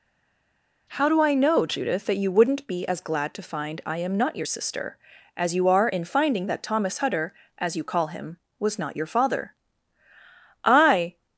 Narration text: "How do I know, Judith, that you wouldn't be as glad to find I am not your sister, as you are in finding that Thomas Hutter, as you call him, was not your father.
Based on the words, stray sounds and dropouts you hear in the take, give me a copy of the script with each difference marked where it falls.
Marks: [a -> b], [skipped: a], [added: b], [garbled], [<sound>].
"How do I know, Judith, that you wouldn't be as glad to find I am not your sister, as you are in finding that Thomas Hutter, as you call him, was not your father. [added: I]